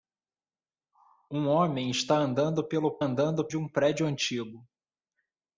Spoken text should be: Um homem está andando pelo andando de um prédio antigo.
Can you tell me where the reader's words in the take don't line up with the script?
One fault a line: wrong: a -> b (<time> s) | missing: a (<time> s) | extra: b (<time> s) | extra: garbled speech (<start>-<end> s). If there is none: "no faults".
no faults